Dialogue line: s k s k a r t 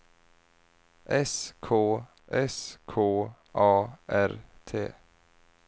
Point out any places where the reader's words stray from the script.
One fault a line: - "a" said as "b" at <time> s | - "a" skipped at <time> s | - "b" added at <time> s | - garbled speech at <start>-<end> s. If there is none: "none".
none